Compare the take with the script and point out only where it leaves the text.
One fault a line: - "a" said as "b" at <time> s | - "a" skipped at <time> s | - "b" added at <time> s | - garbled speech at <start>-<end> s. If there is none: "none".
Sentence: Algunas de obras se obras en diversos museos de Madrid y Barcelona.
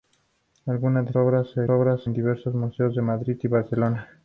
none